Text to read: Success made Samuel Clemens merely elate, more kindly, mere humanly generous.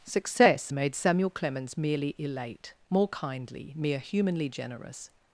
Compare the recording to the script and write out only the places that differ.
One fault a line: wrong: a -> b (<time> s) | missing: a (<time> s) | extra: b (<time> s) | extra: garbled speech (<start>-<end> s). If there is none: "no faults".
no faults